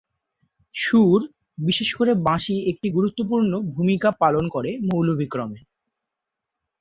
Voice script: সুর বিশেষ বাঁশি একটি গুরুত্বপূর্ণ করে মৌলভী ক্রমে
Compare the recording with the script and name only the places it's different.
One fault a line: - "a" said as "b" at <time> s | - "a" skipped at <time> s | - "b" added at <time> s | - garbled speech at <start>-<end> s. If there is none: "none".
- "করে" added at 1.9 s
- "ভূমিকা পালন" added at 3.7 s